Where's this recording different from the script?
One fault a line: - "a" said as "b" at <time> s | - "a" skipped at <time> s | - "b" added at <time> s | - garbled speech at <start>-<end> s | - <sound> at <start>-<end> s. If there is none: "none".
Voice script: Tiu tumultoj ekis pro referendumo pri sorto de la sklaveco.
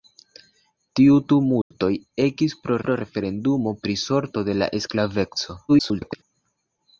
- dropout at 1.6-1.7 s
- "pro" added at 2.8 s
- garbled speech at 5.7-6.2 s